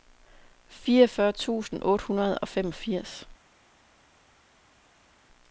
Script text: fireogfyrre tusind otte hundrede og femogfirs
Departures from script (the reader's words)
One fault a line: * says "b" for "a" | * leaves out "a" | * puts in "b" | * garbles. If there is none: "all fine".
all fine